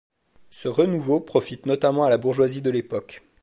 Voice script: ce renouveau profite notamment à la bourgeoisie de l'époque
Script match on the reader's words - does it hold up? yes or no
yes